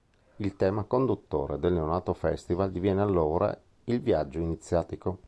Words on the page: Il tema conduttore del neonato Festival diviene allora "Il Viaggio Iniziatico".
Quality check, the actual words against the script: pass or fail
pass